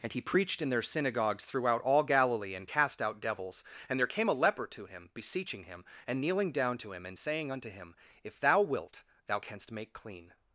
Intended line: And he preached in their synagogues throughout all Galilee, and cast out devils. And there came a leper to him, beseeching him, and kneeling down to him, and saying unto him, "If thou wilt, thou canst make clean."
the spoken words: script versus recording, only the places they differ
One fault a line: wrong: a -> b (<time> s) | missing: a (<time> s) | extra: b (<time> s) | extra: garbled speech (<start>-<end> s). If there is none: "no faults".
no faults